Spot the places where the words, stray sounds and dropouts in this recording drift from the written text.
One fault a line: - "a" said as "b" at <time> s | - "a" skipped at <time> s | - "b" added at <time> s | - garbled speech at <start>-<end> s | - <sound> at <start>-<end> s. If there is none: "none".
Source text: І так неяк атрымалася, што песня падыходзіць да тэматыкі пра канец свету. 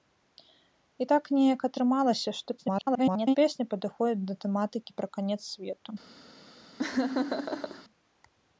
- garbled speech at 2.6-3.4 s
- laugh at 6.8-7.8 s